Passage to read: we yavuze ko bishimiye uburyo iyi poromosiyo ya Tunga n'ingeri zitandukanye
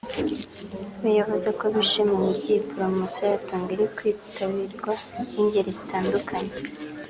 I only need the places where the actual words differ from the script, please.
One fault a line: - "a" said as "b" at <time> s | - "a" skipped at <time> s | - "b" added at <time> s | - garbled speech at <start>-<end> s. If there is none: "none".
- "iri kwitabirwa" added at 3.7 s